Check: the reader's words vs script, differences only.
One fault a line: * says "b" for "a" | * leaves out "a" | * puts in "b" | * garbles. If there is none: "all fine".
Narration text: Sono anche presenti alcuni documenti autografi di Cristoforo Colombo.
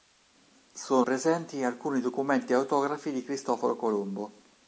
* leaves out "anche"